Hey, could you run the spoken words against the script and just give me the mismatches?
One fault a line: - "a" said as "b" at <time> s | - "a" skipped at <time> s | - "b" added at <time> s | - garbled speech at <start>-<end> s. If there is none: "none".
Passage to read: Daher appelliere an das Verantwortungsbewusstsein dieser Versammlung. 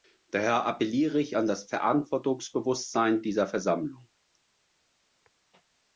- "ich" added at 1.2 s